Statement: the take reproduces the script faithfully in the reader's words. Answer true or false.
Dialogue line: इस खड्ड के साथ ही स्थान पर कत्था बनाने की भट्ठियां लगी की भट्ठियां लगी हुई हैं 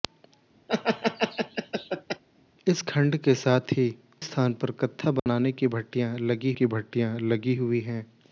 true